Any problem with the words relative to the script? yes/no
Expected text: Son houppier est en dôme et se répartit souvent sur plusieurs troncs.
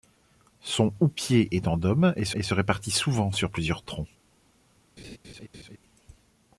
yes